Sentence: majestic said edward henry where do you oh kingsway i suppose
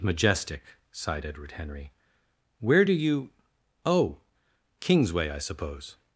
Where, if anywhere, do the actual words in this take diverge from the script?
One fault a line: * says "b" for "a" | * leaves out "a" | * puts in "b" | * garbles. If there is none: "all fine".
* says "sighed" for "said"